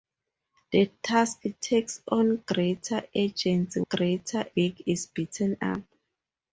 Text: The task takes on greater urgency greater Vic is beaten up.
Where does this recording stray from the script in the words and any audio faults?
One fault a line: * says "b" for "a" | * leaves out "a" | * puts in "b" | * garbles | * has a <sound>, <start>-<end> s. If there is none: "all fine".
all fine